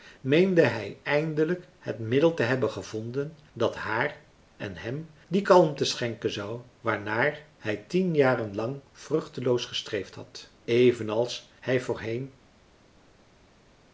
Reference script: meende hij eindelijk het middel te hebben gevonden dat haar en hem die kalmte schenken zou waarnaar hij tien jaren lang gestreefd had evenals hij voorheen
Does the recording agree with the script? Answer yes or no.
no